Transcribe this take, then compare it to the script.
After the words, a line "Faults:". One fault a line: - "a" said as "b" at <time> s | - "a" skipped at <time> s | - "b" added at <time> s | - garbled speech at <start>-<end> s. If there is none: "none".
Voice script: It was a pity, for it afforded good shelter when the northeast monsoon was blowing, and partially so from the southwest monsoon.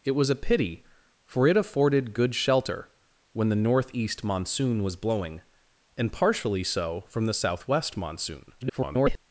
It was a pity, for it afforded good shelter when the northeast monsoon was blowing, and partially so from the southwest monsoon. [garbled]
Faults:
- garbled speech at 8.6-9.2 s